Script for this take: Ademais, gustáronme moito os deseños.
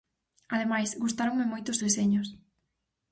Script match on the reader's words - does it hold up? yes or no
yes